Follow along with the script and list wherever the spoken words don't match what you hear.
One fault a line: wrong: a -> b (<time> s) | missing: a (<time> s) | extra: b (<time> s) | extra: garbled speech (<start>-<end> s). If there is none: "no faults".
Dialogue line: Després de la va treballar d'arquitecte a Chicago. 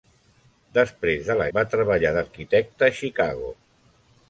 no faults